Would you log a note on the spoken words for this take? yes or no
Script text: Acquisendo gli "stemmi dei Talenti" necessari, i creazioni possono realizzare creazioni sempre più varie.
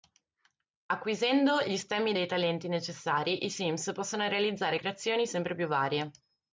yes